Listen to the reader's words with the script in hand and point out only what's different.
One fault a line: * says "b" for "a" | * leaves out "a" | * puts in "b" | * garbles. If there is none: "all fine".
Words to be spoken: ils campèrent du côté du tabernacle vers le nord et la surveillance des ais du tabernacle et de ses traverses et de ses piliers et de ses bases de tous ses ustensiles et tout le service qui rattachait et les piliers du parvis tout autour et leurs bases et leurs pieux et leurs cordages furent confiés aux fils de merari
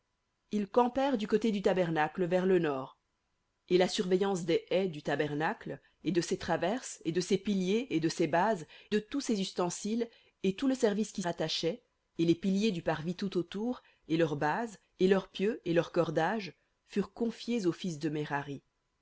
all fine